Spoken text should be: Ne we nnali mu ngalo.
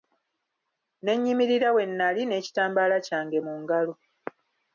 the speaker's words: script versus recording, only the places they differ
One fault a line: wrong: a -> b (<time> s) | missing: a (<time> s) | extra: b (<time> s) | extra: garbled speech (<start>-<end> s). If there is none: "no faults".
extra: nnyimirira (1.1 s)
extra: n'ekitambaala kyange (2.2 s)